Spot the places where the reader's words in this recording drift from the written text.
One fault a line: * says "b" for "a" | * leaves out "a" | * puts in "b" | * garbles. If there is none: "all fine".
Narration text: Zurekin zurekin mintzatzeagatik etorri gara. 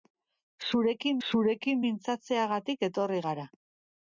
all fine